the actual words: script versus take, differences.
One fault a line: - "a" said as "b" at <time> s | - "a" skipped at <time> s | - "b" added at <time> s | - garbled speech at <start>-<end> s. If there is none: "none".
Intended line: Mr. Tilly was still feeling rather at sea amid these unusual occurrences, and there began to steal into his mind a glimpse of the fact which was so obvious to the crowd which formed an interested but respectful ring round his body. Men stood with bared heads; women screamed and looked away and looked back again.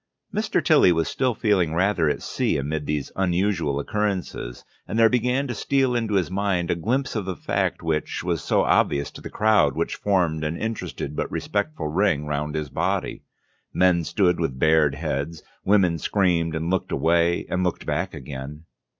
none